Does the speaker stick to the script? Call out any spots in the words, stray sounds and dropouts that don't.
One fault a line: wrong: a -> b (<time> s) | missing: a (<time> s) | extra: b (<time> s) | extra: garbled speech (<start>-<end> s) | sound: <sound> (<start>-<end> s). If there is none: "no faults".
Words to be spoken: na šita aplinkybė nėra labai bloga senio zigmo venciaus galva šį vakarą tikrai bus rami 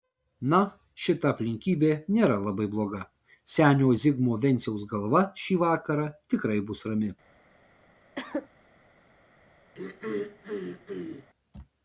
sound: cough (8.2-8.5 s)
sound: throat clearing (9.7-11.3 s)